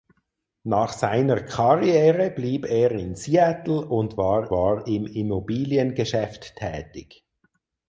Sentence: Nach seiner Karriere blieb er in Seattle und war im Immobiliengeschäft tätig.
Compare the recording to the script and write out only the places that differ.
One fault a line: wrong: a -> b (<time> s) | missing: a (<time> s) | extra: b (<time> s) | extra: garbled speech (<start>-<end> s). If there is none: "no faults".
extra: war (4.5 s)